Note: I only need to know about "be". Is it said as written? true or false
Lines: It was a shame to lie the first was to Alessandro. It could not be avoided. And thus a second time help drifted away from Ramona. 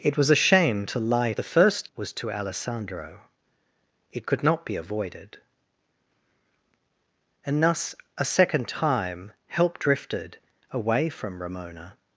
true